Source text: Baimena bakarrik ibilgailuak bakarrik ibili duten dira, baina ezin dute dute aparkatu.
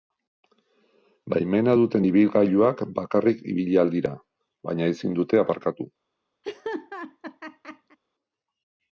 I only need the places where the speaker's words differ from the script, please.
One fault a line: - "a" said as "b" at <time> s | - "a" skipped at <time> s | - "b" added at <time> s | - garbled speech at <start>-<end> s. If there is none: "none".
- "bakarrik" said as "duten" at 1.8 s
- "duten" said as "ahal" at 3.8 s
- "dute" skipped at 5.4 s